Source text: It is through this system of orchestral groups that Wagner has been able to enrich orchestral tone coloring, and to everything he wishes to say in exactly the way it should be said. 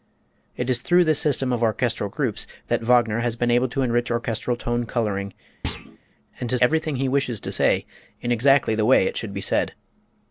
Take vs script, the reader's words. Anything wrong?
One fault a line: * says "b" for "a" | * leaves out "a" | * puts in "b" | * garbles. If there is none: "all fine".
all fine